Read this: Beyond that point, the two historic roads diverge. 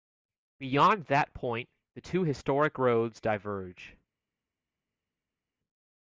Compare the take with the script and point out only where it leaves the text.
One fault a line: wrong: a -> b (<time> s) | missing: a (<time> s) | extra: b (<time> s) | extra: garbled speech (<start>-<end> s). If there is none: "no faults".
no faults